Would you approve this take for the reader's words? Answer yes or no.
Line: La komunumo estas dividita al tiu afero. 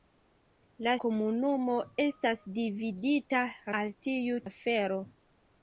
yes